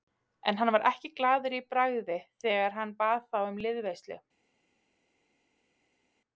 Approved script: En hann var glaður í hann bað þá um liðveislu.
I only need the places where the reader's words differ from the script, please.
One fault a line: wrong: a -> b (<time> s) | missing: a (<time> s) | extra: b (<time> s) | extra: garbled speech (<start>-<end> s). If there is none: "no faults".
extra: ekki (0.9 s)
extra: bragði þegar (1.8 s)